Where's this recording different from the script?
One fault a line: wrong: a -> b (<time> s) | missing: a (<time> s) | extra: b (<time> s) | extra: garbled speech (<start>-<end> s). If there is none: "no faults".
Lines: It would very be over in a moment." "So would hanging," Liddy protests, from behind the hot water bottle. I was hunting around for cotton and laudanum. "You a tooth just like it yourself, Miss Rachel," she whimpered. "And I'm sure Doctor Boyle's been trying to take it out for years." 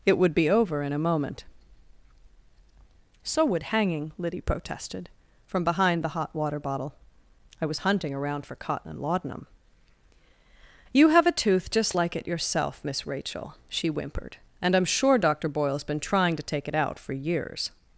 missing: very (0.3 s)
wrong: protests -> protested (4.4 s)
extra: have (11.1 s)